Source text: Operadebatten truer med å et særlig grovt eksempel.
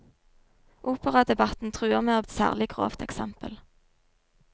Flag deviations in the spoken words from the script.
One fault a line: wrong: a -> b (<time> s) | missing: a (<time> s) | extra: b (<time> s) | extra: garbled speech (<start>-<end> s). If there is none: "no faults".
no faults